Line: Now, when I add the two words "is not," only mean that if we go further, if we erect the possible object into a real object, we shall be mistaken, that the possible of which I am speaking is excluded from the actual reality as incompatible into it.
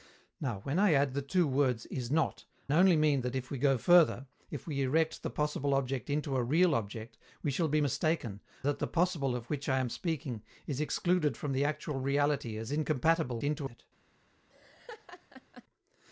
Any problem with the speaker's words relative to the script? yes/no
no